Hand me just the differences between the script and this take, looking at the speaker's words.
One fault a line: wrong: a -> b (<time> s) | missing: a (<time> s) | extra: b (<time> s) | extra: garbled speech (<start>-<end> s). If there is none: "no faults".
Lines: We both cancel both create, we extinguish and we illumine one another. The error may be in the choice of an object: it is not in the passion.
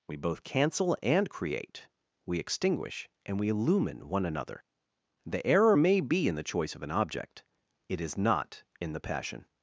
wrong: both -> and (1.0 s)